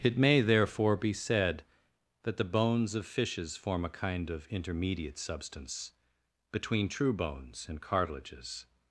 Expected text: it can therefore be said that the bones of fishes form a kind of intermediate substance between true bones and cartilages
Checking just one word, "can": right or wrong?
wrong